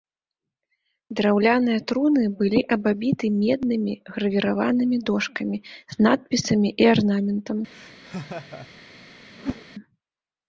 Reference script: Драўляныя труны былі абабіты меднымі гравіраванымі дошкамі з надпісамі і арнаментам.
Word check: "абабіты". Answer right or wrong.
right